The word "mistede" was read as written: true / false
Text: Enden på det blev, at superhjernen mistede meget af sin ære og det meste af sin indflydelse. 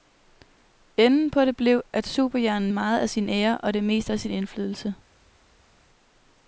false